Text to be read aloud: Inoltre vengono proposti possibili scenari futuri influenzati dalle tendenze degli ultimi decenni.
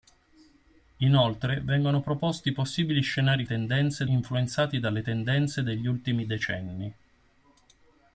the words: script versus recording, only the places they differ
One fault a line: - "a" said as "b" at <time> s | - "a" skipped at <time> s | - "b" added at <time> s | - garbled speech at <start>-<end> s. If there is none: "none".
- "futuri" said as "tendenze" at 3.4 s